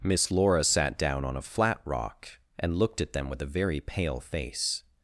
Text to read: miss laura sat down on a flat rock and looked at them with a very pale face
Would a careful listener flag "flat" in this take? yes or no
no